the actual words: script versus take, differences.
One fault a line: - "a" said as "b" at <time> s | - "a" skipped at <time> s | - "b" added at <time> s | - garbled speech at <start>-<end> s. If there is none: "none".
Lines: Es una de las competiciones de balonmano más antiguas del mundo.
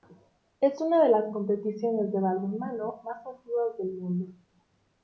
none